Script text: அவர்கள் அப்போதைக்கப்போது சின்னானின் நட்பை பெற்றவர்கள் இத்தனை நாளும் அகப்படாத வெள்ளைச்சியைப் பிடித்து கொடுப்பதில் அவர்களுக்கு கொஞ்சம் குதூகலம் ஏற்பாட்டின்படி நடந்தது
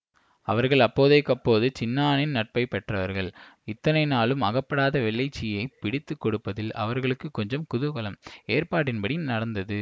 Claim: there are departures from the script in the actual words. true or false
false